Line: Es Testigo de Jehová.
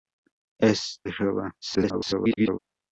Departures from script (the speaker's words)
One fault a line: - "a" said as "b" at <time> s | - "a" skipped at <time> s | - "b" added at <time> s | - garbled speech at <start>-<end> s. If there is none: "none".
- "Testigo" skipped at 1.0 s
- garbled speech at 1.6-2.6 s